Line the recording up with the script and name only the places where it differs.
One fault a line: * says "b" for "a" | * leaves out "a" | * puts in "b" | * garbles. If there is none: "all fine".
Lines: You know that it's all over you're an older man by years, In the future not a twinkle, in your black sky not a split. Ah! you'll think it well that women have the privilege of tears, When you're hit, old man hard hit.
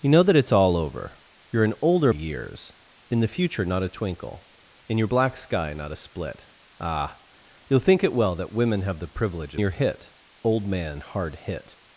* leaves out "man by"
* leaves out "of tears When"